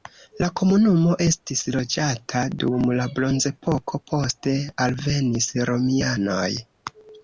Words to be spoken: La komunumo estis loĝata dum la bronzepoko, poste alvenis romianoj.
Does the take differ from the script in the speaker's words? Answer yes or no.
no